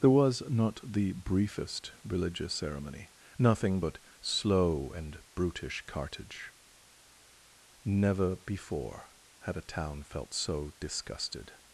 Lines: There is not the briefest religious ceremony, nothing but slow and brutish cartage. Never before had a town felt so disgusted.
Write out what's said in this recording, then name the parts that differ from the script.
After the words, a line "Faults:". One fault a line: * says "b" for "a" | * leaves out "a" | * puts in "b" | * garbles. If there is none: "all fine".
There was not the briefest religious ceremony, nothing but slow and brutish cartage. Never before had a town felt so disgusted.
Faults:
* says "was" for "is"